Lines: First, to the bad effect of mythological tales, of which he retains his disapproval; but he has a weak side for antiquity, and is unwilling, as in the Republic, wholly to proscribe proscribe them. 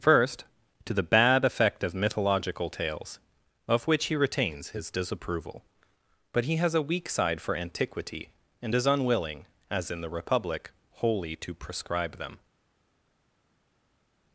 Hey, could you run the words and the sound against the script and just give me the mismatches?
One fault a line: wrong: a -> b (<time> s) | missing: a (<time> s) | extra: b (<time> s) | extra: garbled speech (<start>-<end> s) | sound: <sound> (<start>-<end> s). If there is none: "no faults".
missing: proscribe (12.2 s)